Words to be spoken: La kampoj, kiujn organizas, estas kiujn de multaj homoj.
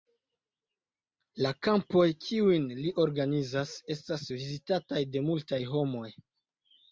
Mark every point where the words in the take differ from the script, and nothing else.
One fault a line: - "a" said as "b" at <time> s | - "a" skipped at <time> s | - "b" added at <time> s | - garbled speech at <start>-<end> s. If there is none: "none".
- "li" added at 2.8 s
- "kiujn" said as "vizitataj" at 4.4 s